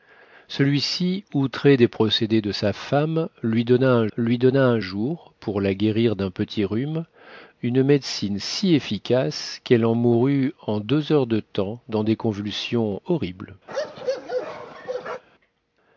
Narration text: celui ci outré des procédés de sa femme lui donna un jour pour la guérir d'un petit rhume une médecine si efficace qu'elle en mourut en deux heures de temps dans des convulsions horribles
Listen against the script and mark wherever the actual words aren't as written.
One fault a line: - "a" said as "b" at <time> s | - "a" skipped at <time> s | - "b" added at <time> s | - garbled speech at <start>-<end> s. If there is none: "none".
- "lui donna un" added at 4.2 s